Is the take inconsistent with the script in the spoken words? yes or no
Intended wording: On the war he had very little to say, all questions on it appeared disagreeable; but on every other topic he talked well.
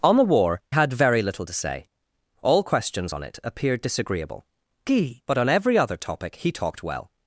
yes